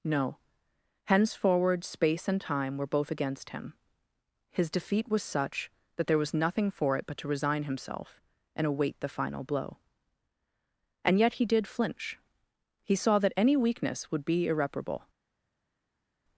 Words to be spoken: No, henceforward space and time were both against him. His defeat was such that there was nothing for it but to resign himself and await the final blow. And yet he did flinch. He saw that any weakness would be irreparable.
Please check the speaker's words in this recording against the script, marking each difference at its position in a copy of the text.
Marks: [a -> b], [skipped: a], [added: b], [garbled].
No, henceforward space and time were both against him. His defeat was such that there was nothing for it but to resign himself and await the final blow. And yet he did flinch. He saw that any weakness would be irreparable.